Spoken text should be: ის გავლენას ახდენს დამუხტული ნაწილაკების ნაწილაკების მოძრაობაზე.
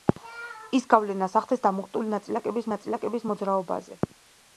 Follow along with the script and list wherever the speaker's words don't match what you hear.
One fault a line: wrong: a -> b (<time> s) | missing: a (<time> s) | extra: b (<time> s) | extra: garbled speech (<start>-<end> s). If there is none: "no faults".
no faults